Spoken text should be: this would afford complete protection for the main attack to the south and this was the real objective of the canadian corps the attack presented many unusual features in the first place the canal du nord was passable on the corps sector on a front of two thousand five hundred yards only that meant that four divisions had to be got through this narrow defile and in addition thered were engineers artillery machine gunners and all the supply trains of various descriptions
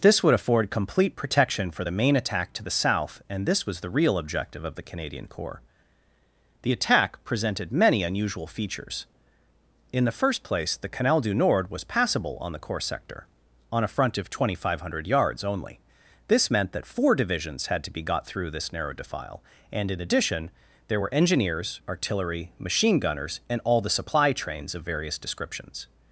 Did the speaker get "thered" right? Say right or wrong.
wrong